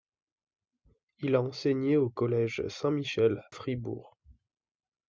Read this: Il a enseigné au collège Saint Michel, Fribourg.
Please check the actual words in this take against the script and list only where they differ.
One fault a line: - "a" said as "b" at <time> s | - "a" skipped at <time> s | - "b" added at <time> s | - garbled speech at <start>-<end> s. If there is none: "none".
none